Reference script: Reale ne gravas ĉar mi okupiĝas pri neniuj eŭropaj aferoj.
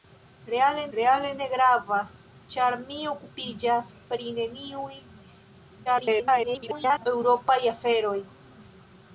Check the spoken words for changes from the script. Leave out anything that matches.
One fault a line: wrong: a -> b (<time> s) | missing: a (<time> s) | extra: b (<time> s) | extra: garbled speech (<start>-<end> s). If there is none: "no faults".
extra: reale (1.0 s)
extra: garbled speech (5.8-7.1 s)